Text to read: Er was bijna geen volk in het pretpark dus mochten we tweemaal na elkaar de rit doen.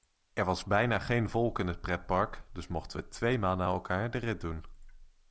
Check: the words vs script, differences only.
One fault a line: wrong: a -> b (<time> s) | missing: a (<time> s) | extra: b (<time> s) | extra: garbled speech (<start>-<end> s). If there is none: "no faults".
no faults